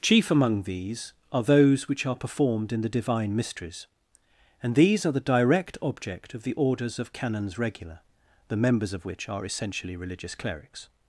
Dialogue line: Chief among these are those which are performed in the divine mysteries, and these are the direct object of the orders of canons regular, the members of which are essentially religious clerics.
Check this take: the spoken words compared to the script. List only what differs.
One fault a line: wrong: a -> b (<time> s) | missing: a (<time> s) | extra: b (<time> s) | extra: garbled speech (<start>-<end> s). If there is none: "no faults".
no faults